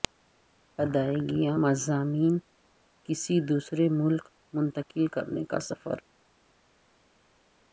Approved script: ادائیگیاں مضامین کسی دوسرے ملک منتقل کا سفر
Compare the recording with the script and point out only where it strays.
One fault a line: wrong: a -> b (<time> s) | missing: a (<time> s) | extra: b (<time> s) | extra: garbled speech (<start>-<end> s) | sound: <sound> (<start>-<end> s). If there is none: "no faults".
extra: کرنے (5.1 s)